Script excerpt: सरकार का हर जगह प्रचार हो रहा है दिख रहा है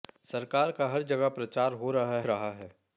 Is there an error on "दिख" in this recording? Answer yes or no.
yes